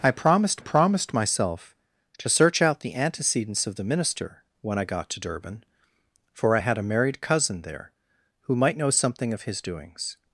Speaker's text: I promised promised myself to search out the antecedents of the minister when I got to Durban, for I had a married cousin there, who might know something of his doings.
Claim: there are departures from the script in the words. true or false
false